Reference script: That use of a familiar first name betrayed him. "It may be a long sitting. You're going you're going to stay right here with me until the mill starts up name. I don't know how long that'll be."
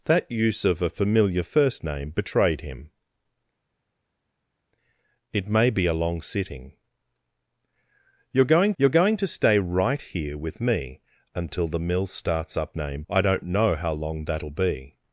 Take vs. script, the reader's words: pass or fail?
pass